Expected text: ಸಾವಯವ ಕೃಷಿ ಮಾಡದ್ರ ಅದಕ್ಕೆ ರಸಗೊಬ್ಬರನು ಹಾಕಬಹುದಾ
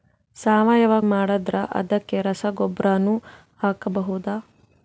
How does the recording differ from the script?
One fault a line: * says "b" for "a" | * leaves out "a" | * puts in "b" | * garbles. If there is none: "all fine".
* leaves out "ಕೃಷಿ"